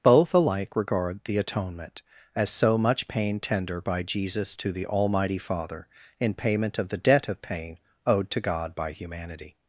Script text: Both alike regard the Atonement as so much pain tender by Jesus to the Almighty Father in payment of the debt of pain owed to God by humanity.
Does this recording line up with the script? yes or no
yes